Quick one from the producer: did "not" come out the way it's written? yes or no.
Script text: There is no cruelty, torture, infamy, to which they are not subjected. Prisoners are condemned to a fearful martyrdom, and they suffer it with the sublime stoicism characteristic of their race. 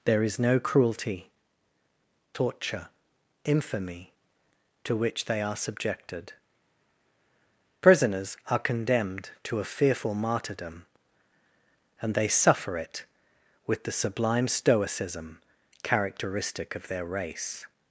no